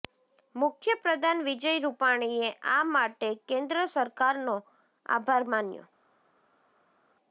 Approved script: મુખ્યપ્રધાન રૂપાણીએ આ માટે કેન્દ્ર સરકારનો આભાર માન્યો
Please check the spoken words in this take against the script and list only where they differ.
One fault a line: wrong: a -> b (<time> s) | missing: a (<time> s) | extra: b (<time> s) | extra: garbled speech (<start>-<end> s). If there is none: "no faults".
extra: વિજય (1.5 s)